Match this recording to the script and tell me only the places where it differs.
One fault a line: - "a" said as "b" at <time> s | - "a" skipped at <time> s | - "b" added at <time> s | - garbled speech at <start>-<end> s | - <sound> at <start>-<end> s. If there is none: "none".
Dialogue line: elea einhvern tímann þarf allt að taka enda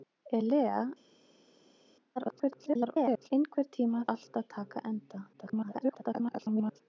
- garbled speech at 2.2-3.3 s
- "þarf" skipped at 4.1 s
- garbled speech at 5.3-6.8 s